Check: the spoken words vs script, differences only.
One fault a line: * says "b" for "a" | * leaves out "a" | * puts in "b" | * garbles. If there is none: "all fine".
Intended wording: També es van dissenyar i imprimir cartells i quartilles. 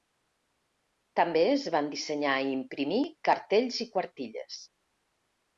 all fine